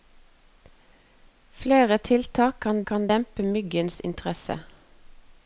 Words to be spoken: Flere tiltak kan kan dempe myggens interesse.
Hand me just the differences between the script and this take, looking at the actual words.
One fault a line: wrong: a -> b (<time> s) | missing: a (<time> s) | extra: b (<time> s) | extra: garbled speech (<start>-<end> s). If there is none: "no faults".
no faults